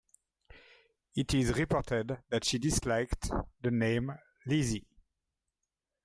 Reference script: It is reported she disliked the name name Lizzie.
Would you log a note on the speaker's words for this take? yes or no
yes